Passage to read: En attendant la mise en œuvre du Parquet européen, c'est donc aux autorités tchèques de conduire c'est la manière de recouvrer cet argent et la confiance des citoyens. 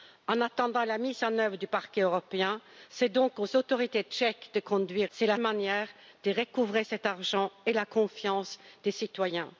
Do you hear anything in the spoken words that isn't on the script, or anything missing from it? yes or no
no